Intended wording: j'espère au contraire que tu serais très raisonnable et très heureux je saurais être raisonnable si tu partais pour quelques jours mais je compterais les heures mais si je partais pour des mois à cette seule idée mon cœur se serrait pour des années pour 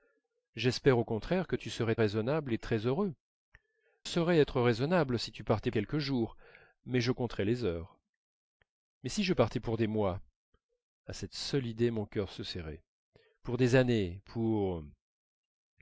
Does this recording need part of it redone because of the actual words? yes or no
yes